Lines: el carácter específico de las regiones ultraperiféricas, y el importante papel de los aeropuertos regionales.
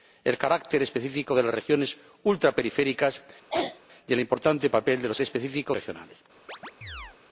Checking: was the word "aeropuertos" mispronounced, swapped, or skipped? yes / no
yes